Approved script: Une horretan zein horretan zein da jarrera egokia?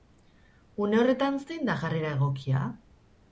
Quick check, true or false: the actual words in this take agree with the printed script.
false